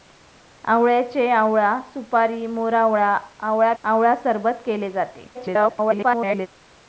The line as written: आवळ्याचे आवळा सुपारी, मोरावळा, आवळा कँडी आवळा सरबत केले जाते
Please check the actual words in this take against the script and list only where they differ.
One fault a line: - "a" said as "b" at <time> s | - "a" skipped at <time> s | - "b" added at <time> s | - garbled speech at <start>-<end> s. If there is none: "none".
- "कँडी" skipped at 3.7 s
- garbled speech at 5.3-6.5 s